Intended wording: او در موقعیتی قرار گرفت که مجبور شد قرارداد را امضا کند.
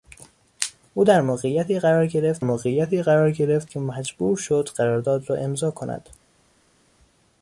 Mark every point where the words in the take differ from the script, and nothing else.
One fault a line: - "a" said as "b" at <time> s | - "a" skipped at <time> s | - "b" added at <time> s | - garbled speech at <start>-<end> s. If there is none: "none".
- "موقعیتی قرار گرفت" added at 2.4 s